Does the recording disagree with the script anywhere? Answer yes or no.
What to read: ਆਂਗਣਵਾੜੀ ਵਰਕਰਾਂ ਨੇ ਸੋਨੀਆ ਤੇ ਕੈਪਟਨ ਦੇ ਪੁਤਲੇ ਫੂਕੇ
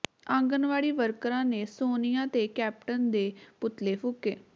no